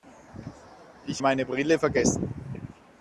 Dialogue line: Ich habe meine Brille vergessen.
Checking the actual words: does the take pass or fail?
fail